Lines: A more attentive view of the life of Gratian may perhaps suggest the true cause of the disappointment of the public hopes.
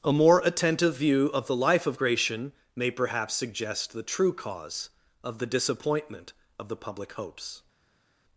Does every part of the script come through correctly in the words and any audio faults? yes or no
yes